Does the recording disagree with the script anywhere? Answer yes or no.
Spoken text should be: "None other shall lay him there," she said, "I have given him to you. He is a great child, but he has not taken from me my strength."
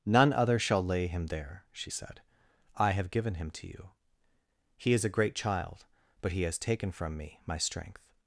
yes